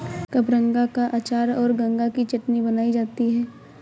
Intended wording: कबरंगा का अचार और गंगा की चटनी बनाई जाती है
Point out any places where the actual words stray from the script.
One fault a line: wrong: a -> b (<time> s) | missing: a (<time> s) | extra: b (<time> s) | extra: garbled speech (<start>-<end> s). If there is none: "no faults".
no faults